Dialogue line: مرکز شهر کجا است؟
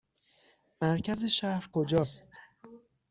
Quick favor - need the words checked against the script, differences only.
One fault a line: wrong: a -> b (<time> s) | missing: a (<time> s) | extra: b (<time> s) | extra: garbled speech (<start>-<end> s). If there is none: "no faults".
no faults